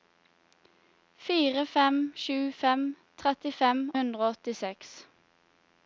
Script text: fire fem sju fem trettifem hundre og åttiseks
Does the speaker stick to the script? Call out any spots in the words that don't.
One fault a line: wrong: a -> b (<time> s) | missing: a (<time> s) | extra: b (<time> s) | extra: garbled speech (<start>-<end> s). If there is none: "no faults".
no faults